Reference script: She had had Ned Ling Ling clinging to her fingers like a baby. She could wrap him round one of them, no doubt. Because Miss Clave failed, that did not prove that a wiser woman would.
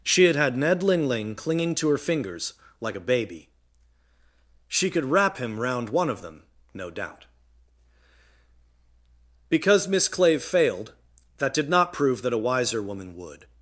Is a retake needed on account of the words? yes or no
no